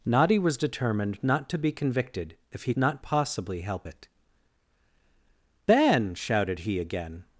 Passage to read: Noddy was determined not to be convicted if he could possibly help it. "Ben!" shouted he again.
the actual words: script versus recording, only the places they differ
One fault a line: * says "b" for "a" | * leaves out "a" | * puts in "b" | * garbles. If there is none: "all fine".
* says "not" for "could"